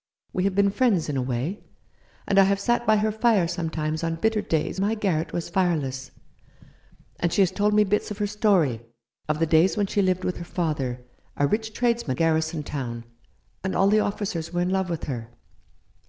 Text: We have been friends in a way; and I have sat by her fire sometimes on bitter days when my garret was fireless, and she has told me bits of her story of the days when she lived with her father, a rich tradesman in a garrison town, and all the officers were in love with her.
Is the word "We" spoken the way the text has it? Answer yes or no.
yes